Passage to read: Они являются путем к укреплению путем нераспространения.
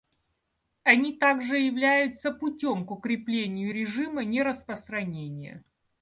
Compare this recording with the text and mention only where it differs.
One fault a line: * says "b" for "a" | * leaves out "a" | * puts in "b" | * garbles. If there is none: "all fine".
* puts in "также"
* says "режима" for "путем"